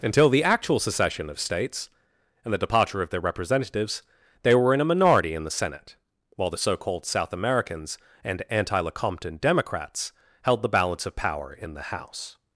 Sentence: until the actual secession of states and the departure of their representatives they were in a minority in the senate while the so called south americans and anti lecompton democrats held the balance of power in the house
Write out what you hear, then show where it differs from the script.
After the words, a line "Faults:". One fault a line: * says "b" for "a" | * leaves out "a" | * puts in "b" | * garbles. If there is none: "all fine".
until the actual secession of states and the departure of their representatives they were in a minority in the senate while the so called south americans and anti lecompton democrats held the balance of power in the house
Faults:
all fine